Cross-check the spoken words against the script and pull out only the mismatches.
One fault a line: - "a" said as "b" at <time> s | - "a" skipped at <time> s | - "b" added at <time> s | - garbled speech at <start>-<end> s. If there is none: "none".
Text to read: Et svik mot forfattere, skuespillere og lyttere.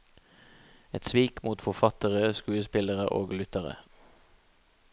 none